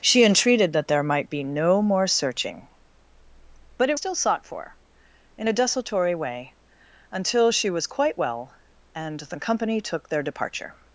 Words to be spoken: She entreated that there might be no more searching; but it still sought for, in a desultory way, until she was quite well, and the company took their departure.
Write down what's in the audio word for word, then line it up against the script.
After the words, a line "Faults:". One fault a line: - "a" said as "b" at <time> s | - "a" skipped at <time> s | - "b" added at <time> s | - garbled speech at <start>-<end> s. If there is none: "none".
She entreated that there might be no more searching; but it still sought for, in a desultory way, until she was quite well, and the company took their departure.
Faults:
none